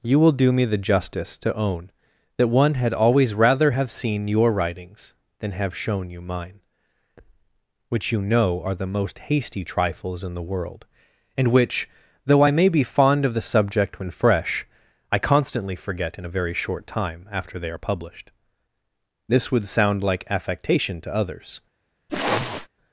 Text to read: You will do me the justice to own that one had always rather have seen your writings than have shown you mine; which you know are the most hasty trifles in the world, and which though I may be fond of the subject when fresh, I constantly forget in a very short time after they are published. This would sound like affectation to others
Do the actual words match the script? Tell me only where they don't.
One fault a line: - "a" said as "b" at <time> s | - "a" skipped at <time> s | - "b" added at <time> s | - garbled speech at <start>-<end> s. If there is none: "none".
none